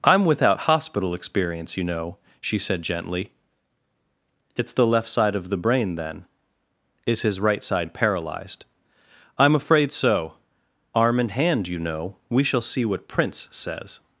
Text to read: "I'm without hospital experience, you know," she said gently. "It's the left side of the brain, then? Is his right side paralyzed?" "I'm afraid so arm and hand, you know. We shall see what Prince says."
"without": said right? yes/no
yes